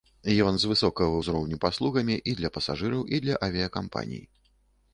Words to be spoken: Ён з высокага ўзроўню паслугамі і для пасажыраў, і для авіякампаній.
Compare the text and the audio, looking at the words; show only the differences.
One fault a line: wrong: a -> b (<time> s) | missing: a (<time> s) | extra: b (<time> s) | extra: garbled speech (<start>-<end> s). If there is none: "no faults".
no faults